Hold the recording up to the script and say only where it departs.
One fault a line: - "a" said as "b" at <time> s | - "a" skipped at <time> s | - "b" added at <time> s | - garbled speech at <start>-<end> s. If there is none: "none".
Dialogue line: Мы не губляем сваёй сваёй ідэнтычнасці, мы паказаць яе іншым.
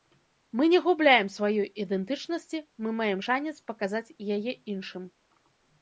- "сваёй" skipped at 1.7 s
- "маем шанец" added at 3.0 s